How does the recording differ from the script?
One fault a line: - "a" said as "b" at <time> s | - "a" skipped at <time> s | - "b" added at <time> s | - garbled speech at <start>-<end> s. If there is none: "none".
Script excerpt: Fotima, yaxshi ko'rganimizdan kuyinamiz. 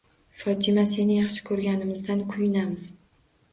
- "seni" added at 0.9 s